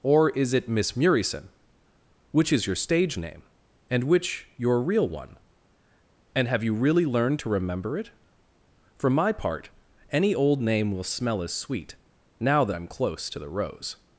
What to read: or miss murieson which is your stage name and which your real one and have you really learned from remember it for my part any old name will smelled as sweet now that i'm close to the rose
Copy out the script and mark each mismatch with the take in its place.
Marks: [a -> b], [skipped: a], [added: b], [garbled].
or [added: is it] miss murieson which is your stage name and which your real one and have you really learned [from -> to] remember it for my part any old name will [smelled -> smell] as sweet now that i'm close to the rose